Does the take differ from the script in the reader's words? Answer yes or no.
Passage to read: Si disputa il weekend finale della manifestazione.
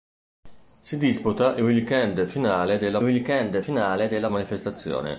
yes